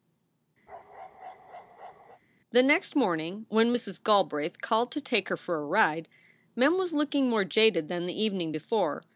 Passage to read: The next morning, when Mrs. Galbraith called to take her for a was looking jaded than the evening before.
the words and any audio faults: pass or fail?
fail